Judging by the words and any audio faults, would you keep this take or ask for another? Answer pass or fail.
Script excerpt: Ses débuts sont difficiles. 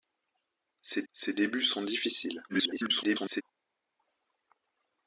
fail